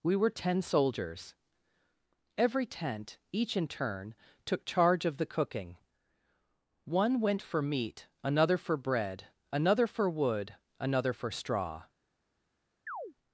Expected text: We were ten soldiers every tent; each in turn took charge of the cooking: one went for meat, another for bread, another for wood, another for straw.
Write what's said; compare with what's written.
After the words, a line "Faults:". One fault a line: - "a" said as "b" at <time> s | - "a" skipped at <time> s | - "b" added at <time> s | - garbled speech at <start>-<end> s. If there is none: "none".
We were ten soldiers every tent; each in turn took charge of the cooking: one went for meat, another for bread, another for wood, another for straw.
Faults:
none